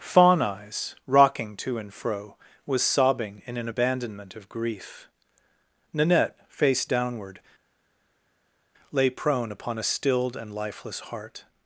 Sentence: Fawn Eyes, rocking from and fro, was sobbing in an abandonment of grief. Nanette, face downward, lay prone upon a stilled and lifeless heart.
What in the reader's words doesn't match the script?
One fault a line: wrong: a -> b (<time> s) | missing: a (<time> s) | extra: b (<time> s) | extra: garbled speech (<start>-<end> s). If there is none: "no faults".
wrong: from -> to (1.6 s)